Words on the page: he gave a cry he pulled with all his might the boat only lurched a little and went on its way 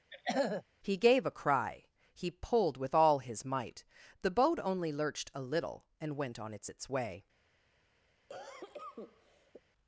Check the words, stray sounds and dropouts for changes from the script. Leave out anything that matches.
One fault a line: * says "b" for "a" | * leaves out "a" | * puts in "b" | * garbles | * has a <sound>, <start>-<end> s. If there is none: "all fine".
* has a throat clearing, 0.1-0.6 s
* puts in "its"
* has a cough, 8.3-9.6 s